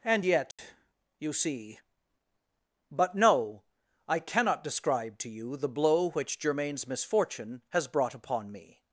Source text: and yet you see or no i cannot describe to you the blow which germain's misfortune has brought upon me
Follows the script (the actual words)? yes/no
no